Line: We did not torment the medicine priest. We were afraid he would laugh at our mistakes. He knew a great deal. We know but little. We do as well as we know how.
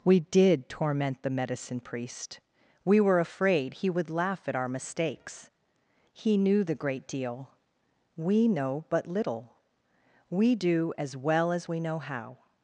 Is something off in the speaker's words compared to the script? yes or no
yes